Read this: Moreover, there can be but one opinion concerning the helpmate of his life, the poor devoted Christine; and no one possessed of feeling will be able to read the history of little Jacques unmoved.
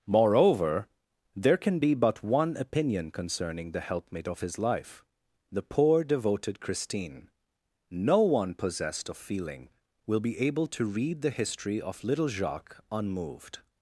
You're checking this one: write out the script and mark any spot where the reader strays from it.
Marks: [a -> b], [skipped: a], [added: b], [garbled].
Moreover, there can be but one opinion concerning the helpmate of his life, the poor devoted Christine; [skipped: and] no one possessed of feeling will be able to read the history of little Jacques unmoved.